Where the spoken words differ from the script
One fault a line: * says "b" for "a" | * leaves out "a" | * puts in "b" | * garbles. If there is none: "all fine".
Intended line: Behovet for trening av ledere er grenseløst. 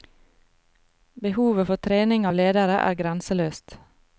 all fine